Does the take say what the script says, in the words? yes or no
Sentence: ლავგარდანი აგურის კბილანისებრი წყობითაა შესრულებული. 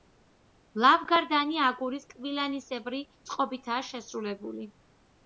yes